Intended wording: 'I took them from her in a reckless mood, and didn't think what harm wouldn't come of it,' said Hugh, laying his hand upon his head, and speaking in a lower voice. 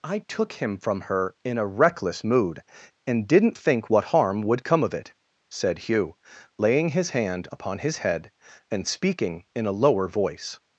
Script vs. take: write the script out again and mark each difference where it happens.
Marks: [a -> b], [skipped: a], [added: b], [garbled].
'I took [them -> him] from her in a reckless mood, and didn't think what harm [wouldn't -> would] come of it,' said Hugh, laying his hand upon his head, and speaking in a lower voice.